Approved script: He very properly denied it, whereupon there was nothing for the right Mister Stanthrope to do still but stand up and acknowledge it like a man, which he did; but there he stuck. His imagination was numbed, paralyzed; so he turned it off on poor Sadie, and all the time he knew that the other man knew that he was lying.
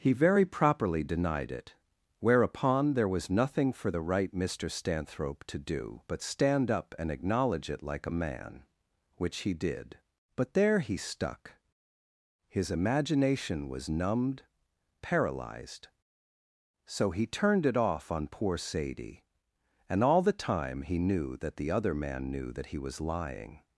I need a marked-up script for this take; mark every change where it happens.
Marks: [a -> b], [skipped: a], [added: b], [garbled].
He very properly denied it, whereupon there was nothing for the right Mister Stanthrope to do [skipped: still] but stand up and acknowledge it like a man, which he did; but there he stuck. His imagination was numbed, paralyzed; so he turned it off on poor Sadie, and all the time he knew that the other man knew that he was lying.